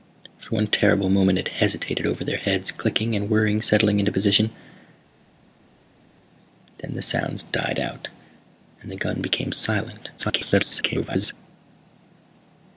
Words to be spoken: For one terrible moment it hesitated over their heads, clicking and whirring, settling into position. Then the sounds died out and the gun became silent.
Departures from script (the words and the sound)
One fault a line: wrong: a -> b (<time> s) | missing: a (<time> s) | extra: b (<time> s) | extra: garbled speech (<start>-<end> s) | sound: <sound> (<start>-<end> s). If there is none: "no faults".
extra: garbled speech (10.2-11.3 s)